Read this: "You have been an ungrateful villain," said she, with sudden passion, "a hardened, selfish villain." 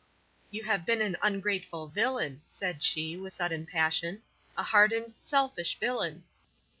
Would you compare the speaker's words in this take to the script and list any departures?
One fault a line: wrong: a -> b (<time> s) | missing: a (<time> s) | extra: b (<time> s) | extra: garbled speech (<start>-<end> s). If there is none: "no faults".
no faults